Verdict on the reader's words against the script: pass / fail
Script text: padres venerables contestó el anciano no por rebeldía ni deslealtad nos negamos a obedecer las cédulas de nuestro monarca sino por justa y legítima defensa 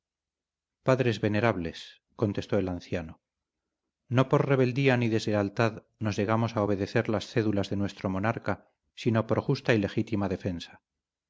pass